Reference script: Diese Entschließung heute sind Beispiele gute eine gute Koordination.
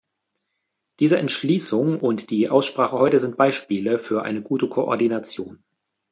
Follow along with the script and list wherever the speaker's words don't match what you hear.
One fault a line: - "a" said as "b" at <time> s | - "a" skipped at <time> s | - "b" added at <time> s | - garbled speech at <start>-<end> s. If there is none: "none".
- "und die Aussprache" added at 2.0 s
- "gute" said as "für" at 4.0 s